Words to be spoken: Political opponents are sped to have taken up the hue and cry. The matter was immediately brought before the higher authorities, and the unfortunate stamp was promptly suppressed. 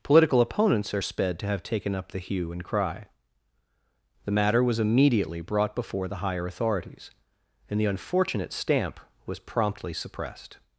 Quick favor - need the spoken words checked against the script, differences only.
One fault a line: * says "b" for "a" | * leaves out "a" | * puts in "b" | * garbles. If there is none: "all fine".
all fine